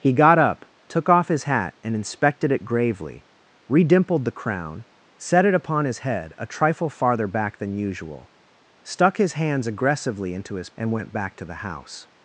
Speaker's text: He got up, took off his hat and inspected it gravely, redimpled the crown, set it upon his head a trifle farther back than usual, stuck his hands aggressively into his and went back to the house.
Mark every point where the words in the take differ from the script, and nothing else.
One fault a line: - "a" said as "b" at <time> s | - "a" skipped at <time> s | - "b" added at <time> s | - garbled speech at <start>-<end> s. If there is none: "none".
none